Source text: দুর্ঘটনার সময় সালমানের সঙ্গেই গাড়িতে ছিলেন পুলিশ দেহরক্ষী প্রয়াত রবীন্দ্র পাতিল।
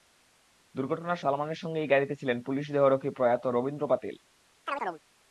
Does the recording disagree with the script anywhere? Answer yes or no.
yes